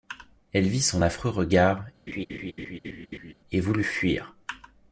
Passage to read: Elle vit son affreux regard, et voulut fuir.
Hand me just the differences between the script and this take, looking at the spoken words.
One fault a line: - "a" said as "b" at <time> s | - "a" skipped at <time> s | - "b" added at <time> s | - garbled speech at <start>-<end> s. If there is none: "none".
none